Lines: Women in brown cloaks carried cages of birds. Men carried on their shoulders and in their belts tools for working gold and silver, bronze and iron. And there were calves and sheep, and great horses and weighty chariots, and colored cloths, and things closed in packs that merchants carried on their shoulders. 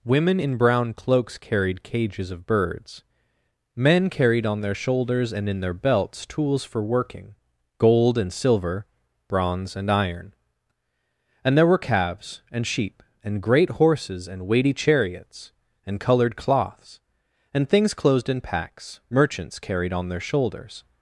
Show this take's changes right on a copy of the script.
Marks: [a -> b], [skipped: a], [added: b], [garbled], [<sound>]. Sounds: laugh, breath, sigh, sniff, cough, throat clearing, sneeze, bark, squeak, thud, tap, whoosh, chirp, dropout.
Women in brown cloaks carried cages of birds. Men carried on their shoulders and in their belts tools for working gold and silver, bronze and iron. And there were calves and sheep, and great horses and weighty chariots, and colored cloths, and things closed in packs [skipped: that] merchants carried on their shoulders.